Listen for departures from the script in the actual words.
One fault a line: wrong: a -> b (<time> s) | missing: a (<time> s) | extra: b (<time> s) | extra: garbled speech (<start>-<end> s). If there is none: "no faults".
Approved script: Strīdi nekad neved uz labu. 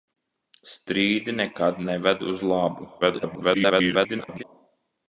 extra: garbled speech (3.0-4.4 s)